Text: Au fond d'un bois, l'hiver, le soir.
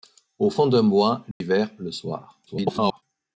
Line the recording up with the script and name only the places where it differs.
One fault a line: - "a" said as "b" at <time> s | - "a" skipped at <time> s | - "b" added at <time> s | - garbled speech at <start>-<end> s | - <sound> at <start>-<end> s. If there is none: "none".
- dropout at 1.3-1.4 s
- garbled speech at 2.5-3.0 s